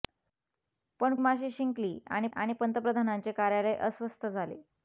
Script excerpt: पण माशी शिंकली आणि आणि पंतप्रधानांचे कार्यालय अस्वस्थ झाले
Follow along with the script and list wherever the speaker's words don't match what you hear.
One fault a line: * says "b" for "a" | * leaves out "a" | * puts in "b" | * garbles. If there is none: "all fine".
all fine